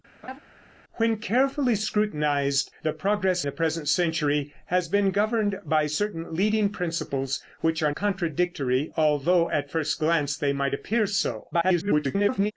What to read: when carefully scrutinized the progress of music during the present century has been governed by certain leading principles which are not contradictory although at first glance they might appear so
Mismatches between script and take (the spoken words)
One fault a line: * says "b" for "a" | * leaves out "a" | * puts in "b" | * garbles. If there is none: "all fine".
* leaves out "of music during"
* leaves out "not"
* garbles